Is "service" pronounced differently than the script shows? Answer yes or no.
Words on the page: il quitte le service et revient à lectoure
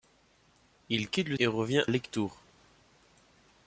yes